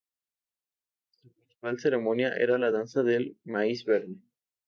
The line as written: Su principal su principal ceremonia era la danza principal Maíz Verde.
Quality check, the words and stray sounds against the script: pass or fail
fail